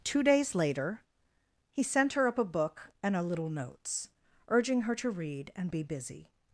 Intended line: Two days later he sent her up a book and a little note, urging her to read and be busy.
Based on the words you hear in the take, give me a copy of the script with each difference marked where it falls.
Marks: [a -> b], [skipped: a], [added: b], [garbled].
Two days later he sent her up a book and a little [note, -> notes] urging her to read and be busy.